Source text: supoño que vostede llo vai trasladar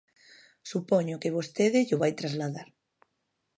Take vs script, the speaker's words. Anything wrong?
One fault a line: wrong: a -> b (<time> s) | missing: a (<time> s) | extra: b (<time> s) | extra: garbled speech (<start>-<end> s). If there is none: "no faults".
no faults